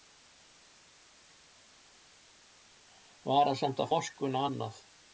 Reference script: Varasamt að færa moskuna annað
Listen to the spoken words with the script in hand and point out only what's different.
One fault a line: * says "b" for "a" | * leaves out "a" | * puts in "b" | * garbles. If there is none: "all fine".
* leaves out "færa"